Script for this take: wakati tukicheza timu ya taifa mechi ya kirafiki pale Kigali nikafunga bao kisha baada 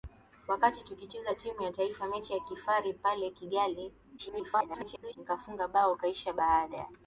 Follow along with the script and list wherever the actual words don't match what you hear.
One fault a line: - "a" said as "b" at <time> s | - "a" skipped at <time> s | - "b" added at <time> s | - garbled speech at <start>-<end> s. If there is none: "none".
- garbled speech at 4.2-5.2 s